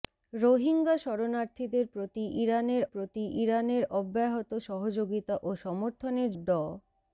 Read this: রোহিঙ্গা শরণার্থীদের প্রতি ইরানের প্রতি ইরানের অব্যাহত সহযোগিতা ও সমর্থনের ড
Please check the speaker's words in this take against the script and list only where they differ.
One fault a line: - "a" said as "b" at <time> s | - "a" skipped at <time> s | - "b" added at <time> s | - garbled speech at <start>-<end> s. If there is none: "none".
none